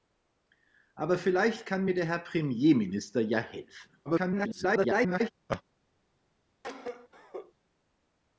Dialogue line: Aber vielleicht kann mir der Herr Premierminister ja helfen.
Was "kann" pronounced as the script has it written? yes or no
yes